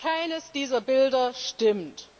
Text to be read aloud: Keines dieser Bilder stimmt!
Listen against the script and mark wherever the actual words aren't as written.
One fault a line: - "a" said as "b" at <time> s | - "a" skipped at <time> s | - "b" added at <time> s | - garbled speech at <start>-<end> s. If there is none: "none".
none